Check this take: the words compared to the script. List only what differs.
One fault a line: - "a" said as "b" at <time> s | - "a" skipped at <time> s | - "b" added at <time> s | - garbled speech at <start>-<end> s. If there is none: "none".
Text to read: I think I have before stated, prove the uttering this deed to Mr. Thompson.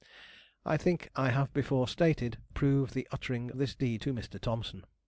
none